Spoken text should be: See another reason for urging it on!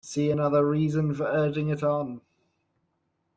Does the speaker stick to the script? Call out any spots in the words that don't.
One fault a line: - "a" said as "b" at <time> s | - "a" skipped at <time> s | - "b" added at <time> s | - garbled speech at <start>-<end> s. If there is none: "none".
none